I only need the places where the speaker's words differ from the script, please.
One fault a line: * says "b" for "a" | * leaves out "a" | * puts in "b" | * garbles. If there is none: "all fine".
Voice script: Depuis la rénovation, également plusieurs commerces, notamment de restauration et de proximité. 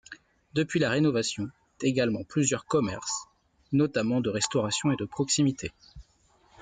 all fine